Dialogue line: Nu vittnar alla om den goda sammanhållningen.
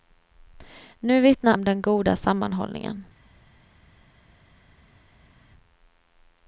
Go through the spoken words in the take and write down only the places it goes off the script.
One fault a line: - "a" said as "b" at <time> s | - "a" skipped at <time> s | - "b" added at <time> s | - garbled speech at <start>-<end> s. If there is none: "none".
- "alla" skipped at 1.5 s